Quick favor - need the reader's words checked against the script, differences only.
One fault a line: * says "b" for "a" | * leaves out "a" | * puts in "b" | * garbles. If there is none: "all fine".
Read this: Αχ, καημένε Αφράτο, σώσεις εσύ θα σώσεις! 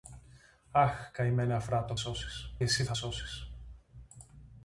all fine